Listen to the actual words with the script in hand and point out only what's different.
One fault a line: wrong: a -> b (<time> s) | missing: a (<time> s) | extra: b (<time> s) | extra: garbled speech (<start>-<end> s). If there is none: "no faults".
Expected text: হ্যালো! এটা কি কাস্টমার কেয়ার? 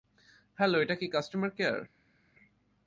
no faults